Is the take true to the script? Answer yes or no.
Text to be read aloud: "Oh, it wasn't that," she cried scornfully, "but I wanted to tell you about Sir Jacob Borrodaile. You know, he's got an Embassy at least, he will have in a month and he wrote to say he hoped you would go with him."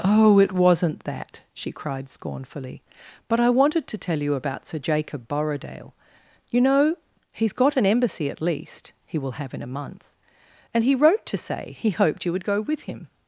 yes